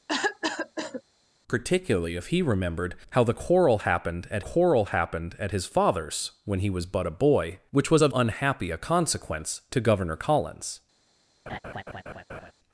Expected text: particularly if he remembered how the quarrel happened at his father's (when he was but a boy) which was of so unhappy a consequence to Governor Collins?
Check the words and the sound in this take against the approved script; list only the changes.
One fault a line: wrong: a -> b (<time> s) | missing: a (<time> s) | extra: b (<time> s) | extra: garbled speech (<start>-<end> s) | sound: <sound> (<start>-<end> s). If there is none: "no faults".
sound: cough (0.1-1.0 s)
extra: quarrel happened at (4.4 s)
missing: so (8.1 s)
sound: laugh (11.5-12.5 s)